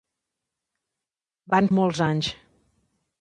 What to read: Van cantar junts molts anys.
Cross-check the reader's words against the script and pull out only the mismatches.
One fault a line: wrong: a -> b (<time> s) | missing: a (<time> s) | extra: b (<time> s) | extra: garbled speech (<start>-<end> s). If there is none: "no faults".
missing: cantar junts (1.7 s)